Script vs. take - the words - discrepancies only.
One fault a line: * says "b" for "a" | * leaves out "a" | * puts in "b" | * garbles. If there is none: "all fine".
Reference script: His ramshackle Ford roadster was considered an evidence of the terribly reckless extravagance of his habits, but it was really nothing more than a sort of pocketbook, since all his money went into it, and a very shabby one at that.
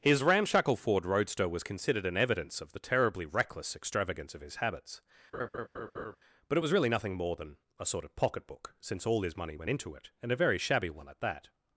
all fine